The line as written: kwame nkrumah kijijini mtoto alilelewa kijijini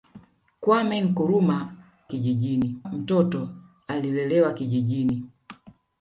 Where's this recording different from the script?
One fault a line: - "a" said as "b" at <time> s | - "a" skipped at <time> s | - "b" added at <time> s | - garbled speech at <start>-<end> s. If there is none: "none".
none